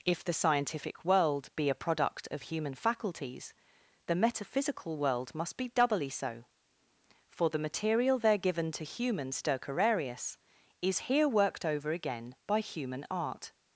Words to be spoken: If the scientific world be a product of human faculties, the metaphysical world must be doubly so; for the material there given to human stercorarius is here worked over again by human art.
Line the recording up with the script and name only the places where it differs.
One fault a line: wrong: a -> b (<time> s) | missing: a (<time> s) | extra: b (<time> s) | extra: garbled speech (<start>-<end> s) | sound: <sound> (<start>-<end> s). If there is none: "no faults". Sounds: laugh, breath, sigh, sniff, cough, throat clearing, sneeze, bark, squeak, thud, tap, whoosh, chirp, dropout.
no faults